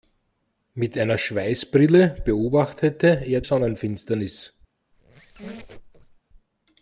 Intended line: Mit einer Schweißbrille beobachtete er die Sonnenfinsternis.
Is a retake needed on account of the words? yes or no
yes